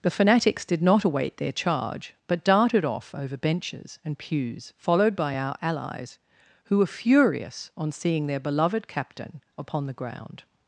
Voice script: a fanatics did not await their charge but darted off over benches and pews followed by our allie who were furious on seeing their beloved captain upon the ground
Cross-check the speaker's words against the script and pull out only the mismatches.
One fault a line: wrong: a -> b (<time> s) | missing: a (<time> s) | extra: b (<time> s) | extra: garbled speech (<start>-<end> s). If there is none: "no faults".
wrong: a -> the (0.0 s)
wrong: allie -> allies (5.6 s)